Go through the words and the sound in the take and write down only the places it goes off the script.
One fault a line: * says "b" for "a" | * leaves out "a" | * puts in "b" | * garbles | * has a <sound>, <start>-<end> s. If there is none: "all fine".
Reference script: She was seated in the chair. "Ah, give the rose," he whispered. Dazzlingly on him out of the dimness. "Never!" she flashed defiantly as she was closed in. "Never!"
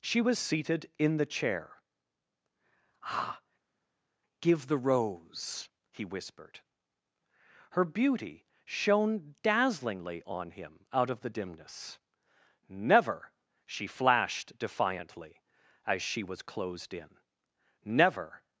* puts in "Her beauty shone"